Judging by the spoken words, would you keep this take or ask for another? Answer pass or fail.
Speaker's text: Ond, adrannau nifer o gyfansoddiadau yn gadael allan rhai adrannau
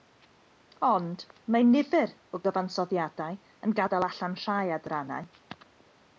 fail